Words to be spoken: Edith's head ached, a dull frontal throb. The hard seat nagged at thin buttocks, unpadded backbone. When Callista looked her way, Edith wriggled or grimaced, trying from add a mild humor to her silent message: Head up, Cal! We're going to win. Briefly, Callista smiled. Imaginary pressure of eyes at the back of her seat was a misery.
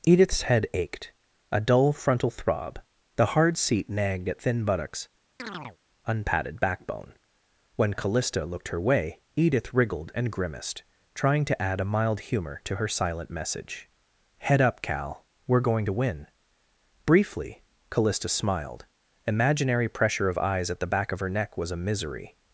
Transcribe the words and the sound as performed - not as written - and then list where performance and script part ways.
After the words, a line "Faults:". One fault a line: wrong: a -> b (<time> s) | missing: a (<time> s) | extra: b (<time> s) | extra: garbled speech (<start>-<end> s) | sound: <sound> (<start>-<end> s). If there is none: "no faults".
Edith's head ached, a dull frontal throb. The hard seat nagged at thin buttocks, unpadded backbone. When Callista looked her way, Edith wriggled and grimaced, trying to add a mild humor to her silent message: Head up, Cal! We're going to win. Briefly, Callista smiled. Imaginary pressure of eyes at the back of her neck was a misery.
Faults:
sound: chirp (5.4-5.8 s)
wrong: or -> and (10.1 s)
wrong: from -> to (11.5 s)
wrong: seat -> neck (21.3 s)